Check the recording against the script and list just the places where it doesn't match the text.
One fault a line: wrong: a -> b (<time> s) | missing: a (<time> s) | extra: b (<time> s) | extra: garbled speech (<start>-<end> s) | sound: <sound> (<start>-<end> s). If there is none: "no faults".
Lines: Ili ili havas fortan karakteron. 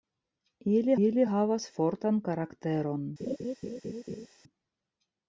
sound: laugh (3.2-4.3 s)